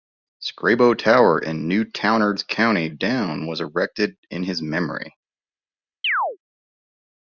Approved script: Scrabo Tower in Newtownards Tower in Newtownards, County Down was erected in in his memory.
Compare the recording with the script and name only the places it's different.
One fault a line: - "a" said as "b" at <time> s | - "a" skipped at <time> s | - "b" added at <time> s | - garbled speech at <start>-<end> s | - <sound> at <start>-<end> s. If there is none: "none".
- "Tower in Newtownards" skipped at 2.5 s
- "in" skipped at 4.4 s
- chirp at 6.0-6.4 s